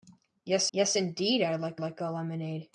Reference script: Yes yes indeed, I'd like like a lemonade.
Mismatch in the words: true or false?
false